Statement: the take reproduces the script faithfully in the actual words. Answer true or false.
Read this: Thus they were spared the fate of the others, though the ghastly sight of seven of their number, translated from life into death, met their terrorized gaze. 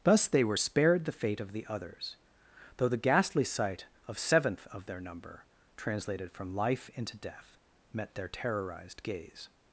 false